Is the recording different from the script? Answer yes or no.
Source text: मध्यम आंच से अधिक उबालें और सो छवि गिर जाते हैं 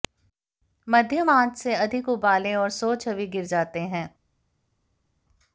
no